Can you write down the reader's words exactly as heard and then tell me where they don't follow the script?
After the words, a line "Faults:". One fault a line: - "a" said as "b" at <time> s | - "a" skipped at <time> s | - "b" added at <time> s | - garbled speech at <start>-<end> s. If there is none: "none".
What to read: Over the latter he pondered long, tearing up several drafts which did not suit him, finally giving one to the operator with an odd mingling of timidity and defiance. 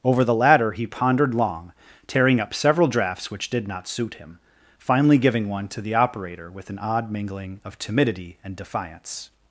Over the latter he pondered long, tearing up several drafts which did not suit him, finally giving one to the operator with an odd mingling of timidity and defiance.
Faults:
none